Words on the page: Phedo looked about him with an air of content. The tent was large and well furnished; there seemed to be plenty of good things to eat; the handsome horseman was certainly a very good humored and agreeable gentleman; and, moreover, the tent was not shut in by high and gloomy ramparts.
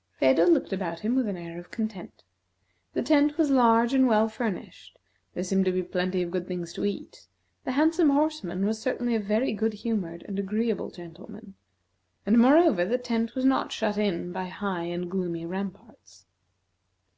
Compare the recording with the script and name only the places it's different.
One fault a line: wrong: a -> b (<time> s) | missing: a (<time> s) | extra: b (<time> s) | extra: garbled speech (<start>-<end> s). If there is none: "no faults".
no faults